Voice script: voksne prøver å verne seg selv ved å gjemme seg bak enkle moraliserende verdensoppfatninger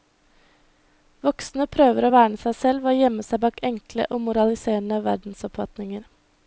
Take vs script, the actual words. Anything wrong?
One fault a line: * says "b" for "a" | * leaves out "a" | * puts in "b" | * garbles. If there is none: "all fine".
* puts in "og"